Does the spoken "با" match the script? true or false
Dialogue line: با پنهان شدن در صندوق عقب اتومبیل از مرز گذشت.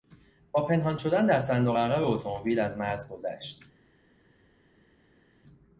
true